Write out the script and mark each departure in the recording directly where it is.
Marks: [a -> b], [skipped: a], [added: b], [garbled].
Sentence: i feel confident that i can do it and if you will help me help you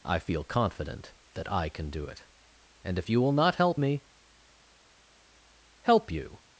i feel confident that i can do it and if you will [added: not] help me help you